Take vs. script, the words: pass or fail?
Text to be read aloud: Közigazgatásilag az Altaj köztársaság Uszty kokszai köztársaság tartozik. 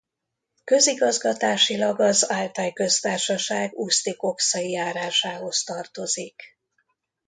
fail